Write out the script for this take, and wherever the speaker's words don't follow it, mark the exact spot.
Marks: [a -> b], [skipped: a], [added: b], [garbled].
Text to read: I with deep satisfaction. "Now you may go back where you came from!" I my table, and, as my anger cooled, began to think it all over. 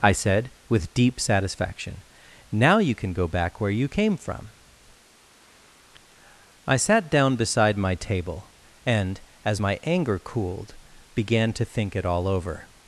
I [added: said] with deep satisfaction. "Now you [may -> can] go back where you came from!" I [added: sat down beside] my table, and, as my anger cooled, began to think it all over.